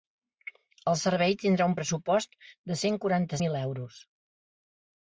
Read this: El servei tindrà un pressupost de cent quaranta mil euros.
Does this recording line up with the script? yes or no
yes